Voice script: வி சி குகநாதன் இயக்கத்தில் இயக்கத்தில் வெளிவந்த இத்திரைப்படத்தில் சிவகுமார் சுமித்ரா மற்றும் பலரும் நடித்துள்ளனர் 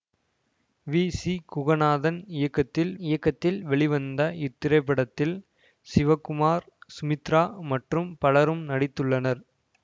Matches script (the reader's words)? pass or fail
pass